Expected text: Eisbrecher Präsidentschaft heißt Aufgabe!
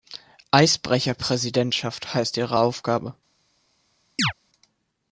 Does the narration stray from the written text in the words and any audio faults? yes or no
yes